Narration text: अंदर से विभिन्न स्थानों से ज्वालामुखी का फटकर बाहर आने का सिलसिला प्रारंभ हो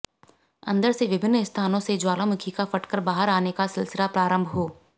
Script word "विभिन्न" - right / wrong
right